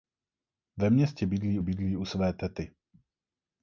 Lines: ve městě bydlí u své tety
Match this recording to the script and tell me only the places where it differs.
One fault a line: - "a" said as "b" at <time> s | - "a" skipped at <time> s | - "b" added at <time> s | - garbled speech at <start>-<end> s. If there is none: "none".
- "bydlí" added at 1.6 s